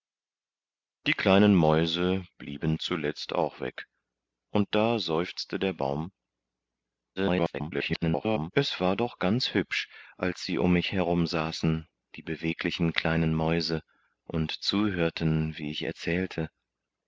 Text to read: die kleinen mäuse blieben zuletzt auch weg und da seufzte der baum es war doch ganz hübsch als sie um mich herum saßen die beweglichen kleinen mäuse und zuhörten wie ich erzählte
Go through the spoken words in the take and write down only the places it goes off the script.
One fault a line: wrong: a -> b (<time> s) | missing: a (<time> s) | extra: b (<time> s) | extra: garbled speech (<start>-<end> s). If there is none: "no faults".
extra: garbled speech (7.2-8.5 s)